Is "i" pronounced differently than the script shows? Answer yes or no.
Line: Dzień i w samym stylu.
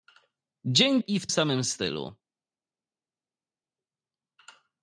no